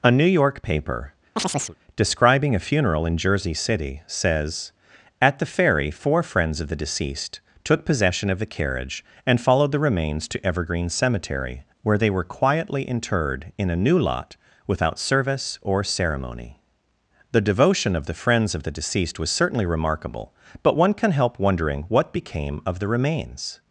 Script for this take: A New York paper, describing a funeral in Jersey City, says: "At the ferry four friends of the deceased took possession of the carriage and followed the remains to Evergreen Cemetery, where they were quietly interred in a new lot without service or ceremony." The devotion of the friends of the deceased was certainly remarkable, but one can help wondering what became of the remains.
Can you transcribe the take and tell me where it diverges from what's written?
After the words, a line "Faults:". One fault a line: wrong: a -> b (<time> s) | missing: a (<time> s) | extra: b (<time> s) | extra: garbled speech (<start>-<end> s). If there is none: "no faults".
A New York paper, describing a funeral in Jersey City, says: "At the ferry four friends of the deceased took possession of the carriage and followed the remains to Evergreen Cemetery, where they were quietly interred in a new lot without service or ceremony." The devotion of the friends of the deceased was certainly remarkable, but one can help wondering what became of the remains.
Faults:
no faults